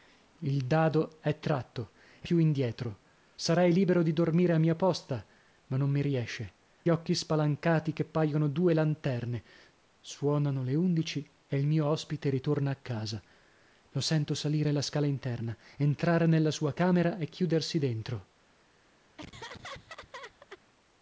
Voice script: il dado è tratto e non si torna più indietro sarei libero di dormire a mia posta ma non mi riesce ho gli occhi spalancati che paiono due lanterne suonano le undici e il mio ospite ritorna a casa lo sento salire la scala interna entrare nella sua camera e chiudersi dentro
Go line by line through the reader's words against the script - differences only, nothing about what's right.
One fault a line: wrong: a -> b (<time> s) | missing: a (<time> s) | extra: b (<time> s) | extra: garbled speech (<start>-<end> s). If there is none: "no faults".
missing: non si torna (2.3 s)
missing: ho gli (6.5 s)